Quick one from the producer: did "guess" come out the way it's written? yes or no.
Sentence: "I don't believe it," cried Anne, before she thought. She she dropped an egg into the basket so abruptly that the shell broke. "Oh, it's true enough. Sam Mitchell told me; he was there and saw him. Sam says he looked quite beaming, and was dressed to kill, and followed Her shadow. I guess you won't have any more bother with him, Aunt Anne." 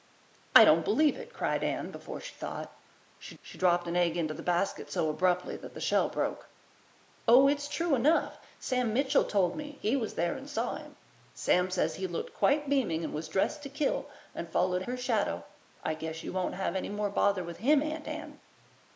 yes